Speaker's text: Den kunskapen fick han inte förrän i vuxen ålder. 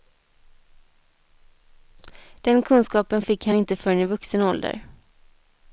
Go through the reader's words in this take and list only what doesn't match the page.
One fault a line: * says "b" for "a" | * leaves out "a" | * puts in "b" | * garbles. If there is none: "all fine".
all fine